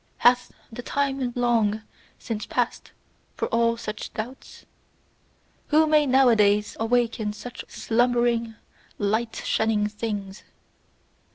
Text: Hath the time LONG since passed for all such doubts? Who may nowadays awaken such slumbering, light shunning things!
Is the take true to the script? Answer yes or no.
yes